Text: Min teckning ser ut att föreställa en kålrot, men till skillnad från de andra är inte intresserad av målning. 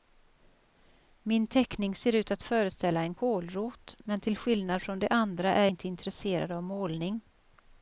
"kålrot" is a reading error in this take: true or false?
false